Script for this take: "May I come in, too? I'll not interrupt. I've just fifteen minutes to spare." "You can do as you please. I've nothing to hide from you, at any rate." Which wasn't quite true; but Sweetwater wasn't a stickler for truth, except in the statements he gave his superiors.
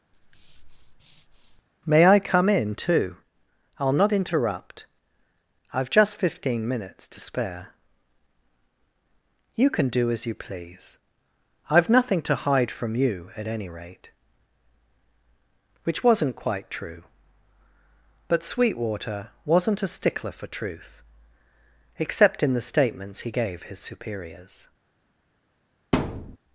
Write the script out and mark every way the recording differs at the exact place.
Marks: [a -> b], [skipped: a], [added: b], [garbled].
"May I come in, too? I'll not interrupt. I've just fifteen minutes to spare." "You can do as you please. I've nothing to hide from you, at any rate." Which wasn't quite true; but Sweetwater wasn't a stickler for truth, except in the statements he gave his superiors.